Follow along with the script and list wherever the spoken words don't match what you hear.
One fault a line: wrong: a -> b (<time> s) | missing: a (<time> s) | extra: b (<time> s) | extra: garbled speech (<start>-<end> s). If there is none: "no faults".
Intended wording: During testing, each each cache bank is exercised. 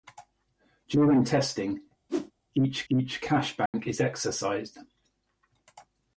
no faults